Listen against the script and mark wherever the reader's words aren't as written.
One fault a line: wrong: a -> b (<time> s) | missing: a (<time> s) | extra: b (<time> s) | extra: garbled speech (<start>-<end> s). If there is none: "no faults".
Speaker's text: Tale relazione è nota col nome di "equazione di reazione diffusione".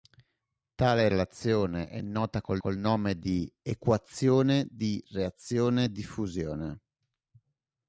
extra: col (2.6 s)